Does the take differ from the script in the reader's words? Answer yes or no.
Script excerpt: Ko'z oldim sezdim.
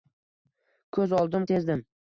no